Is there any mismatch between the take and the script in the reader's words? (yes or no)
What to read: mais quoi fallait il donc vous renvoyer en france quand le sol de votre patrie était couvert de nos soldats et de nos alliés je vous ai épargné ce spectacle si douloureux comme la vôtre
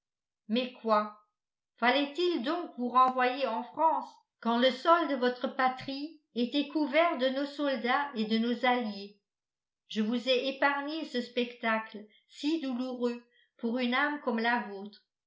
yes